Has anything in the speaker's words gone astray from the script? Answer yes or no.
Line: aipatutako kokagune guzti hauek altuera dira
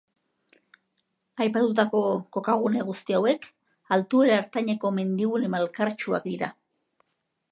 yes